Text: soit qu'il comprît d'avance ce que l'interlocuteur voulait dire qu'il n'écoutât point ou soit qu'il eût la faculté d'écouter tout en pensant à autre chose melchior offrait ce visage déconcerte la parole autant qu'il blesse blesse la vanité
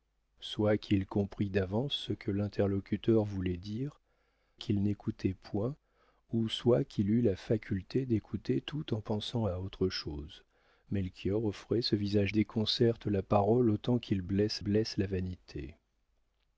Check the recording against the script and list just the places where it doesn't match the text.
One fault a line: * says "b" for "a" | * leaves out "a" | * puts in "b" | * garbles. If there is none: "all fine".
all fine